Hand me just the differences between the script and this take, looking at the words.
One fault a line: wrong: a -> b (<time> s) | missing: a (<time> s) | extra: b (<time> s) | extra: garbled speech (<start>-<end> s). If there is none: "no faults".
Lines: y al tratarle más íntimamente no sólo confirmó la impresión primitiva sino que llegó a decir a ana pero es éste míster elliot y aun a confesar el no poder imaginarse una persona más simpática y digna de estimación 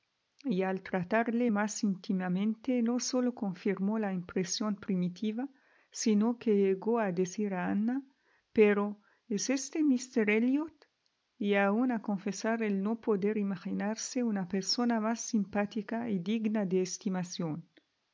no faults